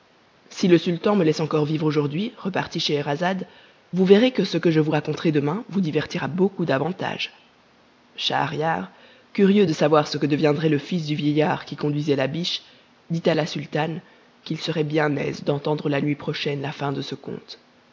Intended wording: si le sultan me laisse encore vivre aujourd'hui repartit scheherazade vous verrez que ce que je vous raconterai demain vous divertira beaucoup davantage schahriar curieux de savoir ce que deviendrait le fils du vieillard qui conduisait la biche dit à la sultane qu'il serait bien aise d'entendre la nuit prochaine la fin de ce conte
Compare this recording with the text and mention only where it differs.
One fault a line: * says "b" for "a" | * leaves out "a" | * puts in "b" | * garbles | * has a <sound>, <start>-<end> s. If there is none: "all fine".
all fine